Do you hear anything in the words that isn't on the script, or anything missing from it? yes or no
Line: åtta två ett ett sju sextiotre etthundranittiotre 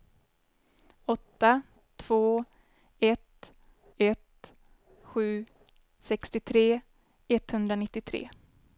no